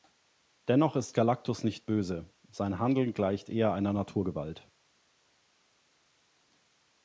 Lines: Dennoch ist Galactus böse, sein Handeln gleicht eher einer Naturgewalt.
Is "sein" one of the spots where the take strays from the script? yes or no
no